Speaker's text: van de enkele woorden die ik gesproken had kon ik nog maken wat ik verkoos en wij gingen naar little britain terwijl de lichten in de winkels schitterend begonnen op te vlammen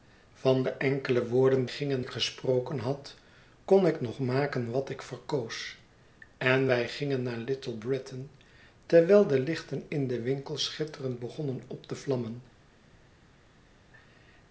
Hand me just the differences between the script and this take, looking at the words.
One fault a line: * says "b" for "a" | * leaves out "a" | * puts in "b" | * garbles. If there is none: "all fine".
* says "gingen" for "die"